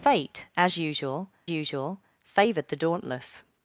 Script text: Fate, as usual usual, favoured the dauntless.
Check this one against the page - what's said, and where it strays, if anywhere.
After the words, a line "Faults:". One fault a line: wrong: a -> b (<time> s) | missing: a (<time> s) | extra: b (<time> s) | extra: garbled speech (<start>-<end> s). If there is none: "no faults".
Fate, as usual usual, favoured the dauntless.
Faults:
no faults